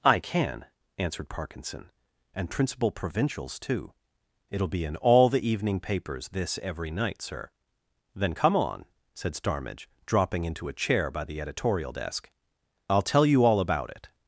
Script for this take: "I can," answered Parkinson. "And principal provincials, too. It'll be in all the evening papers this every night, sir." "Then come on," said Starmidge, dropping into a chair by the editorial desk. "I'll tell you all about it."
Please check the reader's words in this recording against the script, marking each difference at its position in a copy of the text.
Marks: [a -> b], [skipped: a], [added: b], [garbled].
"I can," answered Parkinson. "And principal provincials, too. It'll be in all the evening papers this every night, sir." "Then come on," said Starmidge, dropping into a chair by the editorial desk. "I'll tell you all about it."